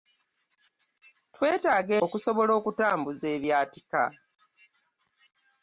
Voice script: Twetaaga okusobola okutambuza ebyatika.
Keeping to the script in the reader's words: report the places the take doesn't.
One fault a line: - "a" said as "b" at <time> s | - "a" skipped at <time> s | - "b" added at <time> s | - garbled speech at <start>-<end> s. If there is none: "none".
none